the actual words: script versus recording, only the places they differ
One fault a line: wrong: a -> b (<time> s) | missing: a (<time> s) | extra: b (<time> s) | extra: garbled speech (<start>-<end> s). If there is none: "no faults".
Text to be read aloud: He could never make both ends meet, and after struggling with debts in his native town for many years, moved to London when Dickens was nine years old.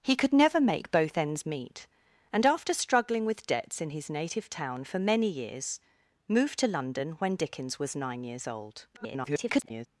extra: garbled speech (8.9-9.9 s)